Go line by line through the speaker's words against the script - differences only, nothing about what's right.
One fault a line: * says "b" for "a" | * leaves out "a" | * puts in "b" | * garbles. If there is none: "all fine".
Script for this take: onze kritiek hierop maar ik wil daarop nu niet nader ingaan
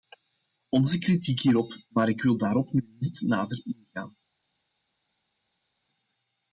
all fine